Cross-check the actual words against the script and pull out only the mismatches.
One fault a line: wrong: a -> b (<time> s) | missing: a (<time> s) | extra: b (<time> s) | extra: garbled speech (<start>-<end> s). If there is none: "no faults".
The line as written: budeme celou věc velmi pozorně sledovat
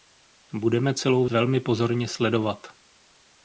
missing: věc (1.2 s)